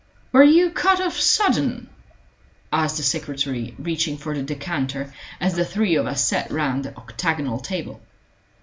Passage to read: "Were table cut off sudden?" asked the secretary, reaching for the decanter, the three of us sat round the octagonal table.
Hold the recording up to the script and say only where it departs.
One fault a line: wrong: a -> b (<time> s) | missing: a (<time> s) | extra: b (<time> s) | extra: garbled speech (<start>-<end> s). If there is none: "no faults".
wrong: table -> you (0.4 s)
extra: as (5.4 s)